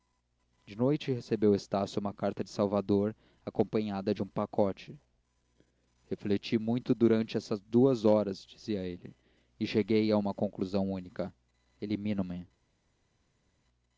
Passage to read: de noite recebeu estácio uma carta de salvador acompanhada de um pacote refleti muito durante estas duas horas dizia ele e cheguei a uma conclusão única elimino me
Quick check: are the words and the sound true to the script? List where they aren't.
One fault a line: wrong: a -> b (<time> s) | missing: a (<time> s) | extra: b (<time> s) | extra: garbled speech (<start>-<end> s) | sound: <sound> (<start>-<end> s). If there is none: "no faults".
no faults